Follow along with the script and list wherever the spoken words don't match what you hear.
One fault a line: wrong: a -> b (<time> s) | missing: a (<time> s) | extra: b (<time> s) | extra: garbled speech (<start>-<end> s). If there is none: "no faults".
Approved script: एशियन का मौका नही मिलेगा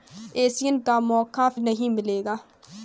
no faults